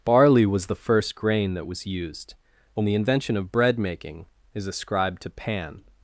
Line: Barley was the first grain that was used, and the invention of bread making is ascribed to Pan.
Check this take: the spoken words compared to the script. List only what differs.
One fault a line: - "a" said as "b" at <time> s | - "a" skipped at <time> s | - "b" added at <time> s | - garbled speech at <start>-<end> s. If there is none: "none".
none